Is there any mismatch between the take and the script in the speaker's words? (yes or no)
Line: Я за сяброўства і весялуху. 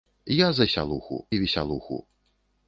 yes